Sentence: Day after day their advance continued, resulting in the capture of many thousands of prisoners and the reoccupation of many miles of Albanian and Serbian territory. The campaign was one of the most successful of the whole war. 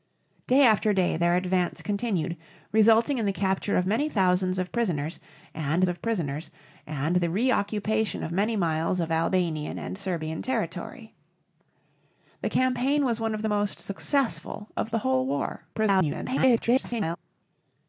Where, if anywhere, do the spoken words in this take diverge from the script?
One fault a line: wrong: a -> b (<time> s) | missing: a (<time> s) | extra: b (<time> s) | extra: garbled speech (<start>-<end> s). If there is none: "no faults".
extra: of prisoners and (5.9 s)
extra: garbled speech (15.7-17.2 s)